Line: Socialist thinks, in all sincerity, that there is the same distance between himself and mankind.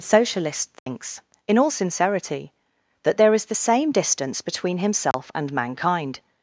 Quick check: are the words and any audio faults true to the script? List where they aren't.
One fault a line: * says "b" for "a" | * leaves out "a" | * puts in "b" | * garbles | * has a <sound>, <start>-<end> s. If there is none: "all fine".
* has a dropout, 0.8-0.9 s
* has a dropout, 5.1-5.1 s